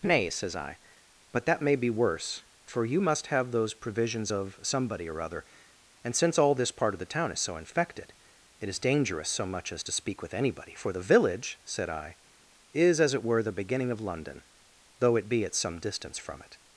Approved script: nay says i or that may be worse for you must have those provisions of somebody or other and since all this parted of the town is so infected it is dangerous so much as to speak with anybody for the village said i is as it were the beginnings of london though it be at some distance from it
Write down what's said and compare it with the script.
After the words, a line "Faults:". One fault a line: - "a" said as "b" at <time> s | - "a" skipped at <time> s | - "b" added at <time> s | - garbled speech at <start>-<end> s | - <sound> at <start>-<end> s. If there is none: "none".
nay says i but that may be worse for you must have those provisions of somebody or other and since all this part of the town is so infected it is dangerous so much as to speak with anybody for the village said i is as it were the beginning of london though it be at some distance from it
Faults:
- "or" said as "but" at 1.3 s
- "parted" said as "part" at 6.7 s
- "beginnings" said as "beginning" at 13.5 s